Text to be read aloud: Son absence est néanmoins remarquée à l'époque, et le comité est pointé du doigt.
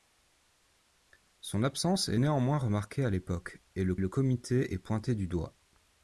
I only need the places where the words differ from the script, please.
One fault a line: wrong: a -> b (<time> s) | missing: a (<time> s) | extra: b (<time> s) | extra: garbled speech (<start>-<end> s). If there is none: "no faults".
extra: le (4.0 s)